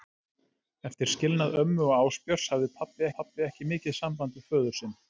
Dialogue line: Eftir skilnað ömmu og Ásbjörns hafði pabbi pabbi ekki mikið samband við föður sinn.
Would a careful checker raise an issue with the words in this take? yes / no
no